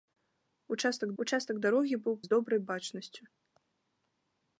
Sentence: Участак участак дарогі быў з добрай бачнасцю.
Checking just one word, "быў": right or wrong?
right